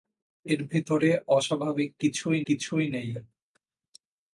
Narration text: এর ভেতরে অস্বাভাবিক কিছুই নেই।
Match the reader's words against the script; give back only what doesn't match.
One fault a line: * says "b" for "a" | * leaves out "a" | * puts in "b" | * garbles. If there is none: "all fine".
* puts in "কিছুই"